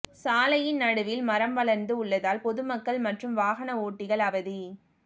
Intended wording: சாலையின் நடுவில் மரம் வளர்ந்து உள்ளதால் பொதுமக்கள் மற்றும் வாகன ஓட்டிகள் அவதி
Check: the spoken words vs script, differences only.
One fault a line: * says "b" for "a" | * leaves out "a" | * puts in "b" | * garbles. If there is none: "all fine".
all fine